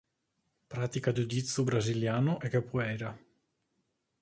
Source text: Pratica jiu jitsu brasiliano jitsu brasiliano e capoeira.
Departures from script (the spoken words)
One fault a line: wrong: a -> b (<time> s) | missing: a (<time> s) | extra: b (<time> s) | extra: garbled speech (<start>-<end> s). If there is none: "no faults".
missing: jitsu brasiliano (2.3 s)